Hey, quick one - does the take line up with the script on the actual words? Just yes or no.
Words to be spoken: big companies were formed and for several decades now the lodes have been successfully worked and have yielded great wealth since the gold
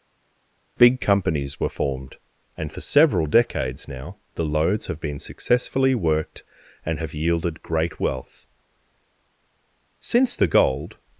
yes